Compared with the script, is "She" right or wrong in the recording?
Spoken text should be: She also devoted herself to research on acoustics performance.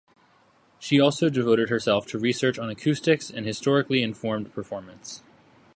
right